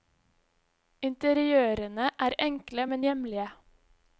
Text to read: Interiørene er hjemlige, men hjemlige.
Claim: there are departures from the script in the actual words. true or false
true